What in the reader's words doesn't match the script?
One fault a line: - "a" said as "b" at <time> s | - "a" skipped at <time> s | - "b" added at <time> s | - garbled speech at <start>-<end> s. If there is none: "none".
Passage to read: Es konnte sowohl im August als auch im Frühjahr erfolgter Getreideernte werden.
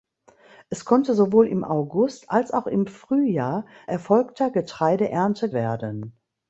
none